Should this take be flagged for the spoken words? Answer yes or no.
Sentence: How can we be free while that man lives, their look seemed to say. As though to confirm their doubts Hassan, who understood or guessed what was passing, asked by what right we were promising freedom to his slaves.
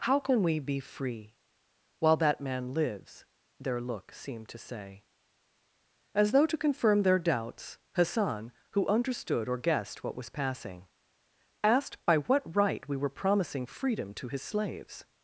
no